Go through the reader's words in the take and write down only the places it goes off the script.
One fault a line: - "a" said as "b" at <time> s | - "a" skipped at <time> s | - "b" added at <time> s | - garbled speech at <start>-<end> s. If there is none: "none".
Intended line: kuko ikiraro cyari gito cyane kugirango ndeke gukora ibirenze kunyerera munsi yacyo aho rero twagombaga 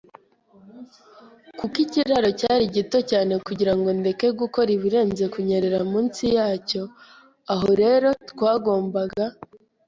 none